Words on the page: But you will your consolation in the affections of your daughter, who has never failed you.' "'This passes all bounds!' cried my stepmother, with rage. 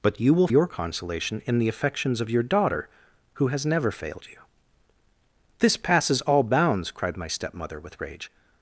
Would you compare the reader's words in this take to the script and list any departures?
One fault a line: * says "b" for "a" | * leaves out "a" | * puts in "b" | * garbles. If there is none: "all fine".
all fine